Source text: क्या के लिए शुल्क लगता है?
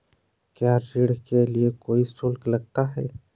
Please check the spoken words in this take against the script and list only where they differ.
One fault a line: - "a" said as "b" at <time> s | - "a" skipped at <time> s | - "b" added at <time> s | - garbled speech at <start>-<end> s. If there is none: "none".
- "ऋण" added at 0.9 s
- "कोई" added at 1.8 s